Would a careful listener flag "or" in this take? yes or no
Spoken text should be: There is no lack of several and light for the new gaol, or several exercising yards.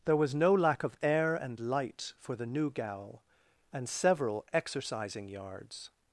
yes